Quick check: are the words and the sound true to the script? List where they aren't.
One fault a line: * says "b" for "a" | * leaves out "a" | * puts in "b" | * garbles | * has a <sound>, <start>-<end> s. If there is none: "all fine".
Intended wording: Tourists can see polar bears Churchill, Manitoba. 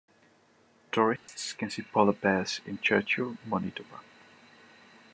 * has a dropout, 1.2-1.3 s
* puts in "in"